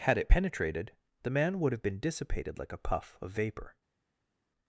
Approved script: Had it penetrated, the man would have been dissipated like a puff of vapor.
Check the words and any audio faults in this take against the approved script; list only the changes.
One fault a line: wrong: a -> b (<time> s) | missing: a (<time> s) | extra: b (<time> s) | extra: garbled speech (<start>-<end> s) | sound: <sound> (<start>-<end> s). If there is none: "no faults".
no faults